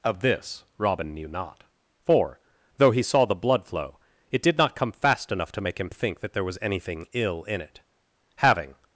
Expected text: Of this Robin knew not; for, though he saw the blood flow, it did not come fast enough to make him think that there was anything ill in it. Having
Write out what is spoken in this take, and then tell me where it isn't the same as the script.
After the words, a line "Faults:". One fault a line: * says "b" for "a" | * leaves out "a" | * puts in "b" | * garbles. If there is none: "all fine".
Of this Robin knew not; for, though he saw the blood flow, it did not come fast enough to make him think that there was anything ill in it. Having
Faults:
all fine